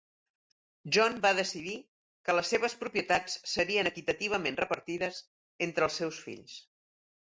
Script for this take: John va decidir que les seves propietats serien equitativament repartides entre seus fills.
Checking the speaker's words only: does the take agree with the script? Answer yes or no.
no